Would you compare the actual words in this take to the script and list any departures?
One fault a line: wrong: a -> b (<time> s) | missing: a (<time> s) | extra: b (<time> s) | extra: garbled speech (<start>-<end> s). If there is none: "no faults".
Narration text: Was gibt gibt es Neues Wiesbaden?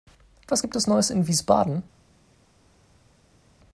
missing: gibt (0.8 s)
extra: in (1.1 s)